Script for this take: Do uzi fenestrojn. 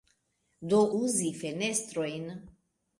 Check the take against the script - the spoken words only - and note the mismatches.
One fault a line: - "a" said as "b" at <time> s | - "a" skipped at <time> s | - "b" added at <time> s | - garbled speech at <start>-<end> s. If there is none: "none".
none